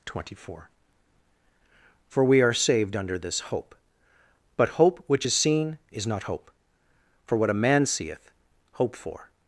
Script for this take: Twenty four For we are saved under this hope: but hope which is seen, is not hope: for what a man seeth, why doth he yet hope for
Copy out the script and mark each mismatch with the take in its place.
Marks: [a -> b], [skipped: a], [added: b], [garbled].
Twenty four For we are saved under this hope: but hope which is seen, is not hope: for what a man seeth, [skipped: why doth he yet] hope for